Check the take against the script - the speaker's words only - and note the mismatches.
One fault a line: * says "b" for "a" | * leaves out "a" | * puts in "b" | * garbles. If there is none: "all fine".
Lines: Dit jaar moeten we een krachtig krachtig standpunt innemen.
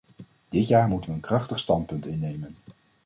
* leaves out "krachtig"